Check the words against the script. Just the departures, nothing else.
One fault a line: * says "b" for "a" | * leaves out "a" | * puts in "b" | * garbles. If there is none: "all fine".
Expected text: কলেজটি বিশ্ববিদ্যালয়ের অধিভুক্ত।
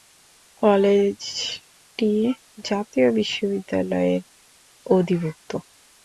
* puts in "জাতীয়"